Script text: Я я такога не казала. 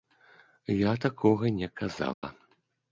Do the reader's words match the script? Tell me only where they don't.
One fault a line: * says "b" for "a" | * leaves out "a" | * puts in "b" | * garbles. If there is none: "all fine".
* leaves out "я"